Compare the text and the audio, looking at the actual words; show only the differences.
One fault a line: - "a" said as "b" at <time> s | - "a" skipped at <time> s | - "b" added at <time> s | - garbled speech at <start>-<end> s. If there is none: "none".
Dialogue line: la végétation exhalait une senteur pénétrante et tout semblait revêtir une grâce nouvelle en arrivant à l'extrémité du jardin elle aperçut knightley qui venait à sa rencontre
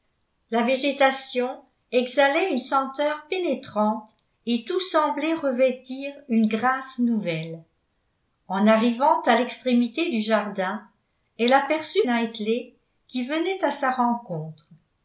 none